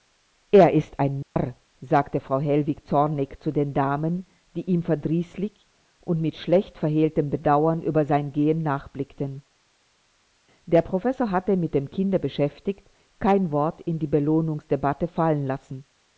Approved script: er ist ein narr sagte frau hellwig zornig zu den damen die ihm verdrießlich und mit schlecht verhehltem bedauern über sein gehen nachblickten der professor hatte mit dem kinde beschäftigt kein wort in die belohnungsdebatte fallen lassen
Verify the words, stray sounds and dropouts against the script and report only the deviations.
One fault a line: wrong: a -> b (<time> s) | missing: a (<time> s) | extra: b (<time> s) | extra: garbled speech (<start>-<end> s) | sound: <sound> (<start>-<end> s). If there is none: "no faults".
sound: dropout (1.2-1.4 s)